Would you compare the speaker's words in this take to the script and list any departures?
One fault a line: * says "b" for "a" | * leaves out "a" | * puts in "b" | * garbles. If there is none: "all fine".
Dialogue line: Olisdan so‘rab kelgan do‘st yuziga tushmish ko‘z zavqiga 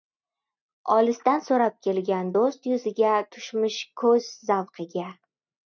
all fine